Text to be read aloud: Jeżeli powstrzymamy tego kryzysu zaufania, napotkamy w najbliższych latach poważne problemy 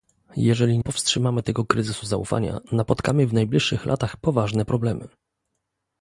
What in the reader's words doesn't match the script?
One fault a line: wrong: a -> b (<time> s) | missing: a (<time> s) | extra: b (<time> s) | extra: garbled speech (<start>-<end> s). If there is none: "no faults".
no faults